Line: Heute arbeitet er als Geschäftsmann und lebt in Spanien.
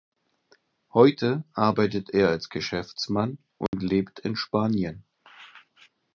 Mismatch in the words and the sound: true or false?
true